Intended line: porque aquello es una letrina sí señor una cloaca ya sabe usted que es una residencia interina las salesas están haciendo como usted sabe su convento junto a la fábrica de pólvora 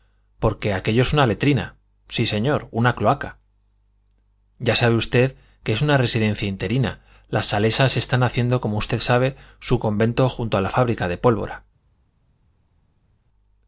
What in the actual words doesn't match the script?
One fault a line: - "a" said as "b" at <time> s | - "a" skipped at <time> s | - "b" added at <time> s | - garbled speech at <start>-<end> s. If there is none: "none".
none